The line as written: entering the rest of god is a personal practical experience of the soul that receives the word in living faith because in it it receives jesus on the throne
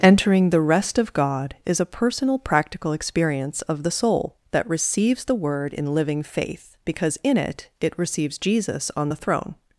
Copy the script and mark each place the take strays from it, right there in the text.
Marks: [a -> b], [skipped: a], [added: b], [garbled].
entering the rest of god is a personal practical experience of the soul that receives the word in living faith because in it it receives jesus on the throne